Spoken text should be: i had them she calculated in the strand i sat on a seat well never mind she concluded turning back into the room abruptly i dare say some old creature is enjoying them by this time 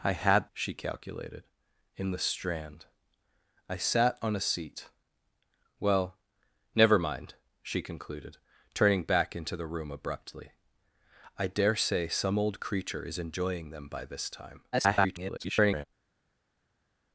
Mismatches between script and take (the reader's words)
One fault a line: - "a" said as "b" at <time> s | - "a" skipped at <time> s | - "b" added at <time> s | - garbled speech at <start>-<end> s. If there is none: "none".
- "them" skipped at 0.5 s
- garbled speech at 14.7-15.9 s